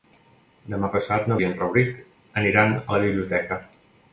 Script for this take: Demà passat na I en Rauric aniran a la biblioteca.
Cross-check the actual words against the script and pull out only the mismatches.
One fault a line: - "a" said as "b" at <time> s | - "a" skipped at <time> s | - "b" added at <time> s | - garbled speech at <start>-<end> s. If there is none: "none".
none